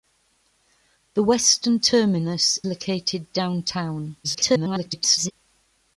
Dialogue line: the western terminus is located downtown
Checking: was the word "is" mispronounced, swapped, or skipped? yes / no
yes